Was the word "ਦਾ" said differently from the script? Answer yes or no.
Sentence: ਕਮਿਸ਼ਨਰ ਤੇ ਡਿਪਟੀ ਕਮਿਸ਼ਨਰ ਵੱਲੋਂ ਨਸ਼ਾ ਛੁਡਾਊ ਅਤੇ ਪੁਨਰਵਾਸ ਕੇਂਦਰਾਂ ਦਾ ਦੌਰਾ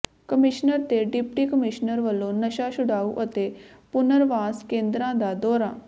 no